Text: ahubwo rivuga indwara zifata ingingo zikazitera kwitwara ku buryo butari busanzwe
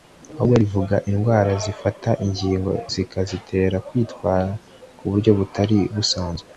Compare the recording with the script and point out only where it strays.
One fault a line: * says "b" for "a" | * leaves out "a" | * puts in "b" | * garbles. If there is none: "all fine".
all fine